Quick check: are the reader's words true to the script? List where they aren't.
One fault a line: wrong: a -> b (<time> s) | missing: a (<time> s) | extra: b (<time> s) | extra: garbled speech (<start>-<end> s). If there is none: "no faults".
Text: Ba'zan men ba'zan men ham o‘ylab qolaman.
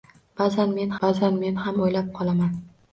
no faults